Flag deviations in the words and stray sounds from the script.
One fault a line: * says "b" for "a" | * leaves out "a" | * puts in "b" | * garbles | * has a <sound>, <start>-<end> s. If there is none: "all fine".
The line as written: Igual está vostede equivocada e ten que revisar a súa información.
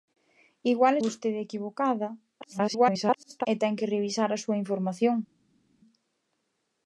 * leaves out "está"
* garbles